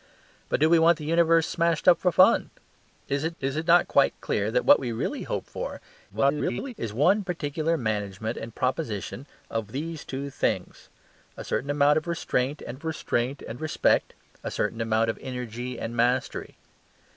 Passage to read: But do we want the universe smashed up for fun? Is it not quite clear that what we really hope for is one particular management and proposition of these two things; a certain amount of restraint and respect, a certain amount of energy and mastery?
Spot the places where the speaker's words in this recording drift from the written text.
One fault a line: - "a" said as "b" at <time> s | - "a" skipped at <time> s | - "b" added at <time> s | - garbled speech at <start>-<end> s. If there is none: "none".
- "is it" added at 3.4 s
- garbled speech at 6.1-6.7 s
- "of restraint and" added at 12.7 s